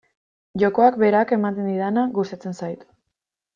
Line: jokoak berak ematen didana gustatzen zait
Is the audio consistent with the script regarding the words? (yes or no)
yes